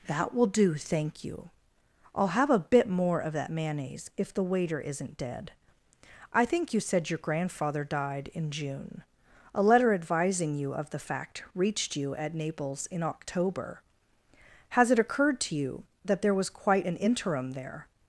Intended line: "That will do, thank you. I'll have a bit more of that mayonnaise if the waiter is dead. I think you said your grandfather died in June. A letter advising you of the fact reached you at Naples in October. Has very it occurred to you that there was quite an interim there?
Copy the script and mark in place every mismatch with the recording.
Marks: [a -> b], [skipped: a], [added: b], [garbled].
"That will do, thank you. I'll have a bit more of that mayonnaise if the waiter [is -> isn't] dead. I think you said your grandfather died in June. A letter advising you of the fact reached you at Naples in October. Has [skipped: very] it occurred to you that there was quite an interim there?